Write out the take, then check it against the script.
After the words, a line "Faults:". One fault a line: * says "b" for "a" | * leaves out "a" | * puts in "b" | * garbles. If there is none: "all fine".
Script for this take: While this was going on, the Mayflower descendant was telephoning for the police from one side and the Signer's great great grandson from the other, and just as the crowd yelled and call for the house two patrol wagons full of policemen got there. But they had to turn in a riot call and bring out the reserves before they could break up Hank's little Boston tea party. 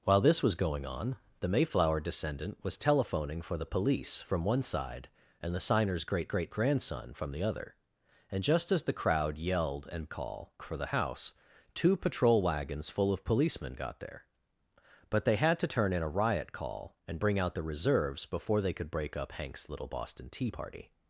While this was going on, the Mayflower descendant was telephoning for the police from one side and the Signer's great great grandson from the other, and just as the crowd yelled and call for the house two patrol wagons full of policemen got there. But they had to turn in a riot call and bring out the reserves before they could break up Hank's little Boston tea party.
Faults:
all fine